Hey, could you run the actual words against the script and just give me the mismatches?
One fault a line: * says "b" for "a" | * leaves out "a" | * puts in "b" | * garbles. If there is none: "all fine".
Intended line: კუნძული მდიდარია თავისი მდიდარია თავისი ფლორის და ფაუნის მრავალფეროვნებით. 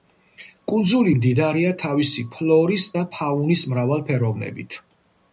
* leaves out "მდიდარია თავისი"